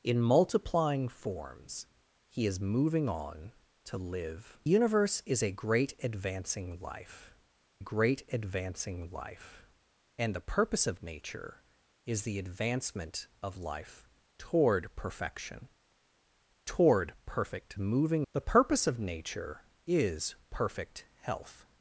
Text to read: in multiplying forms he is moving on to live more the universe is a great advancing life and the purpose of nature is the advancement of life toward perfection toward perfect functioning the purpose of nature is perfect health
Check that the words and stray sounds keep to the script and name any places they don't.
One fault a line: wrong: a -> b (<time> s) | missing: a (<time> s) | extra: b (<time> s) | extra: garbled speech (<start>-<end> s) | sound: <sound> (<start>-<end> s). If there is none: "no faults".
missing: more the (4.6 s)
extra: great advancing life (7.8 s)
wrong: functioning -> moving (17.8 s)